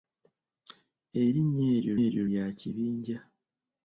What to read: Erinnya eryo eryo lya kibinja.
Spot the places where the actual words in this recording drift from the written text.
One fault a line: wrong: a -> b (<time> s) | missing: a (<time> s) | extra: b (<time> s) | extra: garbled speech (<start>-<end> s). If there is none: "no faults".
no faults